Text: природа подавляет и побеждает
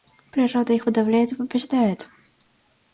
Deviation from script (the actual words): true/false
true